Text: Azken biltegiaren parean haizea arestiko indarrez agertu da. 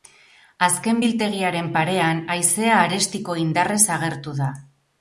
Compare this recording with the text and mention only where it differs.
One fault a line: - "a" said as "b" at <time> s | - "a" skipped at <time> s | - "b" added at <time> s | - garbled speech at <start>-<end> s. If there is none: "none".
none